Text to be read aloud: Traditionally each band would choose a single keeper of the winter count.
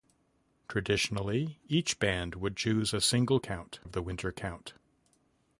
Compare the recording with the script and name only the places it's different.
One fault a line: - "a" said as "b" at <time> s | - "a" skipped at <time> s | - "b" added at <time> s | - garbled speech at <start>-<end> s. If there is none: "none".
- "keeper" said as "count" at 3.4 s